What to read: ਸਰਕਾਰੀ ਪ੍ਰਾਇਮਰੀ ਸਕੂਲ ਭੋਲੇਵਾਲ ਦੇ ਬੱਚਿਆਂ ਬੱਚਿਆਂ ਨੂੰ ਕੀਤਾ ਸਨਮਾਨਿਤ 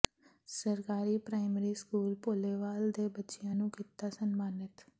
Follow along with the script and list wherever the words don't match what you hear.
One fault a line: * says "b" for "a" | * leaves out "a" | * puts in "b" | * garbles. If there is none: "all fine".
* leaves out "ਬੱਚਿਆਂ"